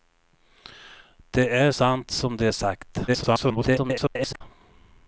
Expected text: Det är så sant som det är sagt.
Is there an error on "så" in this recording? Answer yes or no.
yes